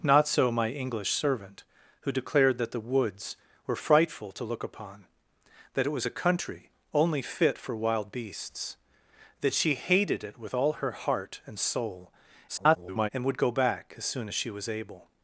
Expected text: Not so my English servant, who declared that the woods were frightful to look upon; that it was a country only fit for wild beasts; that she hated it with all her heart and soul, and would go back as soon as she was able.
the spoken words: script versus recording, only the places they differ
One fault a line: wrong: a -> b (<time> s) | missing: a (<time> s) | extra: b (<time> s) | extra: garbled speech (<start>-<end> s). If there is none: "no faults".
extra: garbled speech (12.5-13.1 s)